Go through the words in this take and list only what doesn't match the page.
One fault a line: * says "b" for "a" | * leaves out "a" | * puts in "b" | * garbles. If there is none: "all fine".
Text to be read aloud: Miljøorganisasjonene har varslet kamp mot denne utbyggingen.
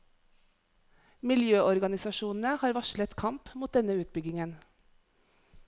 all fine